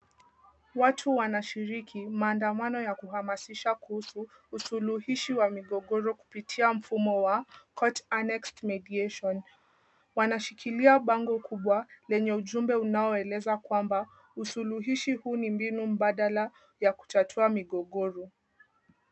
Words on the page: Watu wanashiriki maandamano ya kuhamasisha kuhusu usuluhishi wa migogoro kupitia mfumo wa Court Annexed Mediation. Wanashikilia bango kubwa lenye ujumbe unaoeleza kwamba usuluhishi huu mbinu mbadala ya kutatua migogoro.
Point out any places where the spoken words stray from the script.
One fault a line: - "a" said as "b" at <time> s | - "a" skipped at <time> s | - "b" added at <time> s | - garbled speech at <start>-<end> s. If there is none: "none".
- "ni" added at 15.4 s